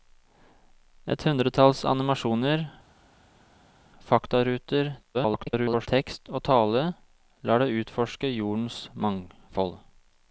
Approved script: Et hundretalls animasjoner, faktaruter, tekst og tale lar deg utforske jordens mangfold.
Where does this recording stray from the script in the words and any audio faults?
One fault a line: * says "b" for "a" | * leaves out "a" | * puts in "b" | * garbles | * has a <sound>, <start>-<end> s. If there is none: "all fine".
* garbles